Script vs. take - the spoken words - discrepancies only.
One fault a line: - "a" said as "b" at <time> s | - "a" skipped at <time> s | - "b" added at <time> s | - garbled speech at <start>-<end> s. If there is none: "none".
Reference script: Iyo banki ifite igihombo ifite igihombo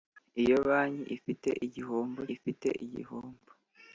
none